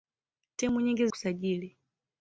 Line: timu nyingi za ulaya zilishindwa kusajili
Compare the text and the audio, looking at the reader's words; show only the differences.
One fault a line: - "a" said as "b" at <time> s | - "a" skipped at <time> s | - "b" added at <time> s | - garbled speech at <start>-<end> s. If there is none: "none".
- "za ulaya zilishindwa" skipped at 1.1 s